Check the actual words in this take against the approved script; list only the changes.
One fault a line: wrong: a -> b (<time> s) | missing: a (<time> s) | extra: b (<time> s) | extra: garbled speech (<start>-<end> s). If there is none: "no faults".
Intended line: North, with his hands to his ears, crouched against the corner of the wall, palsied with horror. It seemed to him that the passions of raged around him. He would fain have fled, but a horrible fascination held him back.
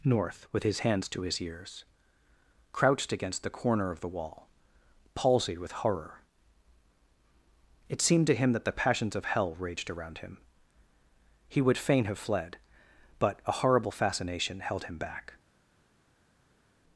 extra: hell (9.2 s)